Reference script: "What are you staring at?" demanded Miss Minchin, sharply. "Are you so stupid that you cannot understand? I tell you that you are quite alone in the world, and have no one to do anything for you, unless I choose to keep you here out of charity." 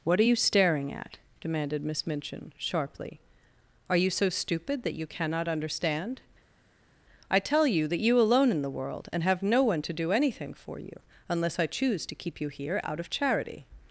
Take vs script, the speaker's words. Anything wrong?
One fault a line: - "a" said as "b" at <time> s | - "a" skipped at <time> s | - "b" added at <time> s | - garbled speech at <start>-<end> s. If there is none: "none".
- "are quite" skipped at 8.2 s